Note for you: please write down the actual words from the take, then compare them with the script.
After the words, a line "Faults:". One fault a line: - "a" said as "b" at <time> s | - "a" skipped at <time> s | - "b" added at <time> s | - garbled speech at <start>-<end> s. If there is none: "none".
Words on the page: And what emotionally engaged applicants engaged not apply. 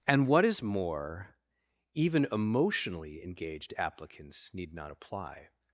And what is more, even emotionally engaged applicants need not apply.
Faults:
- "is more even" added at 0.5 s
- "engaged" said as "need" at 4.5 s